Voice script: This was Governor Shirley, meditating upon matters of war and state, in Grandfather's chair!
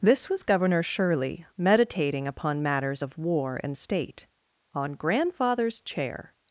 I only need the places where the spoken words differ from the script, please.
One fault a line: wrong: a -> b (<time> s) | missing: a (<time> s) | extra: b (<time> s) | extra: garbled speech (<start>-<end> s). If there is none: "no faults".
wrong: in -> on (4.7 s)